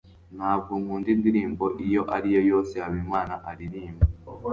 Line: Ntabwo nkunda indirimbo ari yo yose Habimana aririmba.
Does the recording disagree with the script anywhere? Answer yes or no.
yes